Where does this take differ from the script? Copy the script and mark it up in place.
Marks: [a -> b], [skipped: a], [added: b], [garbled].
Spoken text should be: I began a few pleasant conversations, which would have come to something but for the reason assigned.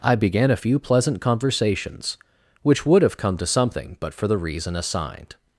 I began a few pleasant conversations, which would have come to something but for the reason assigned.